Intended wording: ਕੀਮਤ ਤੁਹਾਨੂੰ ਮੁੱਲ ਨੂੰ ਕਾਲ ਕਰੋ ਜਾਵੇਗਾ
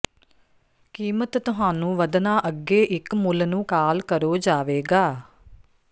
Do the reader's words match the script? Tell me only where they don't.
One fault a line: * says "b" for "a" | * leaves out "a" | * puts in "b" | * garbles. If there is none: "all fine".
* puts in "ਵਧਣਾ ਅੱਗੇ ਇੱਕ"